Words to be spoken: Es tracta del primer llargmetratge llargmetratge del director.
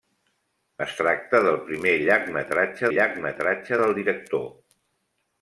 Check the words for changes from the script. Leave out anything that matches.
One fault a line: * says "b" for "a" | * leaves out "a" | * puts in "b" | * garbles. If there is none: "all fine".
all fine